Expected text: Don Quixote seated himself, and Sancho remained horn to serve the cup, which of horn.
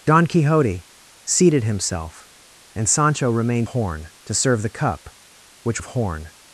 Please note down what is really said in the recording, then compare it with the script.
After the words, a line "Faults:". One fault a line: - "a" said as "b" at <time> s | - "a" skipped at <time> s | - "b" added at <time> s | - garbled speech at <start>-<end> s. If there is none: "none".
Don Quixote seated himself, and Sancho remained horn to serve the cup, which of horn.
Faults:
none